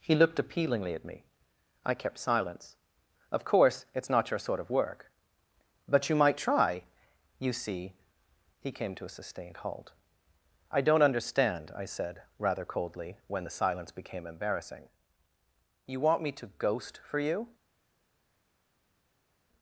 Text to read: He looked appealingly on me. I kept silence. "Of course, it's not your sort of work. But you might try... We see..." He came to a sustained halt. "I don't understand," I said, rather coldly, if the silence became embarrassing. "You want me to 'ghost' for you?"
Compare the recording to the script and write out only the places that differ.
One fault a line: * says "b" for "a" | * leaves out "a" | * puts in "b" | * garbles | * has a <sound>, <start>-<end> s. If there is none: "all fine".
* says "at" for "on"
* says "You" for "We"
* says "when" for "if"